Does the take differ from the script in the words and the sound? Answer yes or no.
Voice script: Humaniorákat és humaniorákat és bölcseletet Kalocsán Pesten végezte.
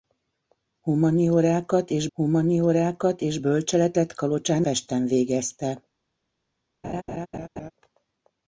yes